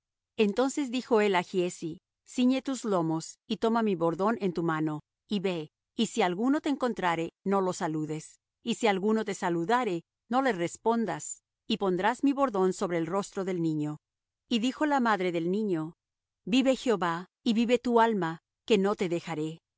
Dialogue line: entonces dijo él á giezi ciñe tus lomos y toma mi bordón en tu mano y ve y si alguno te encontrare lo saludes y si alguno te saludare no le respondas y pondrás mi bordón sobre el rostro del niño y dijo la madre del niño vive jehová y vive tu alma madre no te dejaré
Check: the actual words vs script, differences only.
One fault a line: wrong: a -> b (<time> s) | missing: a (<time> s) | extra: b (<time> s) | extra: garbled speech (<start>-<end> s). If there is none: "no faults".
extra: no (7.4 s)
wrong: madre -> que (18.6 s)